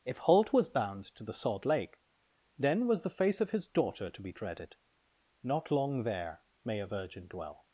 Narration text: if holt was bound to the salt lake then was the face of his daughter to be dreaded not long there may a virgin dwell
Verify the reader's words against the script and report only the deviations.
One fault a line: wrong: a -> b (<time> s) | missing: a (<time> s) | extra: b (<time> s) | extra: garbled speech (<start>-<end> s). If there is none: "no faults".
no faults